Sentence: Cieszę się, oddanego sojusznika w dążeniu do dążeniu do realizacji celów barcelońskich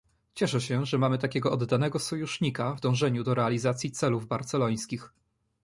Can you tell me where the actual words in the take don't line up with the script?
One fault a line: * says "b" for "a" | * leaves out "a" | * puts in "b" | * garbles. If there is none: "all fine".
* puts in "że mamy takiego"
* leaves out "dążeniu do"